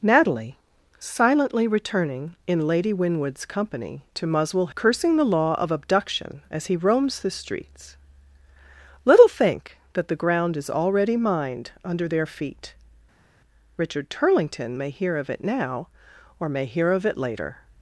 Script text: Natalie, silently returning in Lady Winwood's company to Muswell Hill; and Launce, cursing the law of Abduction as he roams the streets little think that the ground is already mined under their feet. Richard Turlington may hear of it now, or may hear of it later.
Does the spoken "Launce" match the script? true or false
false